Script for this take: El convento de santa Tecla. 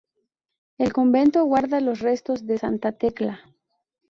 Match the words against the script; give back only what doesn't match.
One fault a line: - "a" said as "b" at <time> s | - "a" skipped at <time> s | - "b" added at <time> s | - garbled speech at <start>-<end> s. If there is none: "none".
- "guarda los restos" added at 1.4 s